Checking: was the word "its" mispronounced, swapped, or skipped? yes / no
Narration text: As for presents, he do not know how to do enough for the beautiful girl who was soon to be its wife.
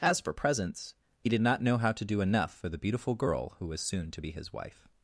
yes